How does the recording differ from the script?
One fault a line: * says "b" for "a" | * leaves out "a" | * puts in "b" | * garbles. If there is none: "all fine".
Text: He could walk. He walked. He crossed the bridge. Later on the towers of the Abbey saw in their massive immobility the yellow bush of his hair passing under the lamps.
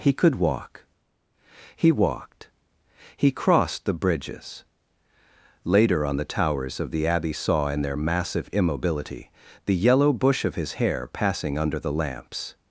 * says "bridges" for "bridge"